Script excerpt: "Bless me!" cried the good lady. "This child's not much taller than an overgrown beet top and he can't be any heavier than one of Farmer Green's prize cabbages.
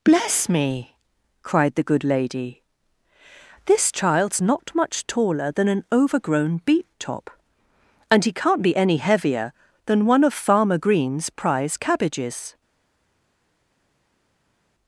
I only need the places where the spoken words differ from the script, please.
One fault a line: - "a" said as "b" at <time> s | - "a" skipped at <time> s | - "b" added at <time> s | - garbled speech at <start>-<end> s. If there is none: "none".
none